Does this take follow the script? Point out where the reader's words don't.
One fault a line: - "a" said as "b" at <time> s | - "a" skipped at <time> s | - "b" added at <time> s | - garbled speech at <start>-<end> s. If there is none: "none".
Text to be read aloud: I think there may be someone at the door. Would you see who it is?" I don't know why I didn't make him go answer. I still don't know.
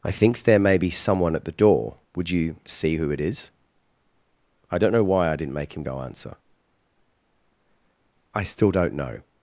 - "think" said as "thinks" at 0.1 s